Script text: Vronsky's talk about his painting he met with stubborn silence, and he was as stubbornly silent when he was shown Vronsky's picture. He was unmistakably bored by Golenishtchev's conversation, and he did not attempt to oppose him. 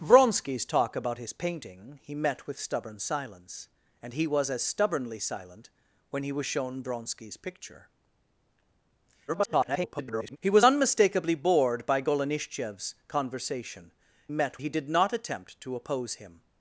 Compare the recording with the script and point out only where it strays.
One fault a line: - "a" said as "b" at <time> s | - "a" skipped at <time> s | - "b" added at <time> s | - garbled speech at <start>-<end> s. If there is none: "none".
- garbled speech at 9.3-10.4 s
- "and" said as "met" at 14.3 s